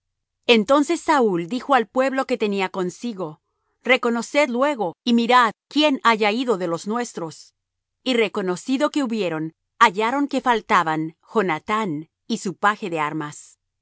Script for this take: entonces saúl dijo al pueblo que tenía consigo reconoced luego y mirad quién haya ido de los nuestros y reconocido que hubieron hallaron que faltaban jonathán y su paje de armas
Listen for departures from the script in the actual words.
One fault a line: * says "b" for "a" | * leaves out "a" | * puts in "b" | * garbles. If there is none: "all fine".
all fine